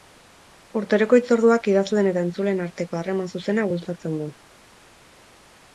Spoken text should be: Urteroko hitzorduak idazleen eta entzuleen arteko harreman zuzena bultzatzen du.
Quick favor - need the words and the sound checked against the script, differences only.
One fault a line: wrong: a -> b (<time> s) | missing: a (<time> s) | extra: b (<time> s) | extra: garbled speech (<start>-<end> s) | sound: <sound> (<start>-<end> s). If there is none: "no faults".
no faults